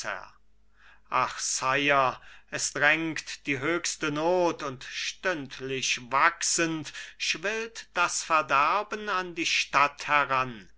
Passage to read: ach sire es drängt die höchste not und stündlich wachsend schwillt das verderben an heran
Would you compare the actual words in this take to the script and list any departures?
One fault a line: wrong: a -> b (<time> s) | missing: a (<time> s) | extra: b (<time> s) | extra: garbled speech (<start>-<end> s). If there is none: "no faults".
extra: die stadt (9.3 s)